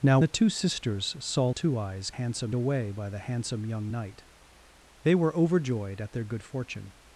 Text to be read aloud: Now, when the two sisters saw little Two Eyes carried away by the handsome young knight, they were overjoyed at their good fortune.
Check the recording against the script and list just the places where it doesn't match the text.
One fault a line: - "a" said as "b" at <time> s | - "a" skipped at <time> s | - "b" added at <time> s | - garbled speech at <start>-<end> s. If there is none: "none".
- "when" skipped at 0.2 s
- "little" skipped at 1.5 s
- "carried" said as "handsome" at 2.1 s